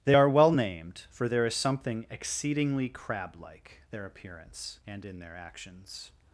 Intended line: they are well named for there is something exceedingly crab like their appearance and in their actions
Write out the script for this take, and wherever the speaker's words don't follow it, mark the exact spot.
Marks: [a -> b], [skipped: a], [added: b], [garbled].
they are well named for there is something exceedingly crab like their appearance and in their actions